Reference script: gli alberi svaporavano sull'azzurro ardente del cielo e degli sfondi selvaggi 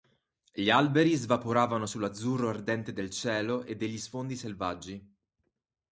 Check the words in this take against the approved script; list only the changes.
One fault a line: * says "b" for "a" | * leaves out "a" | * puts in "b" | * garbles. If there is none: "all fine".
all fine